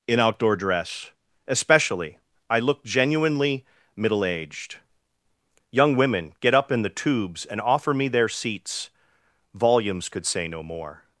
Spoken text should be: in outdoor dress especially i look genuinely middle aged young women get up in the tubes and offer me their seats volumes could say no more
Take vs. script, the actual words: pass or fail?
pass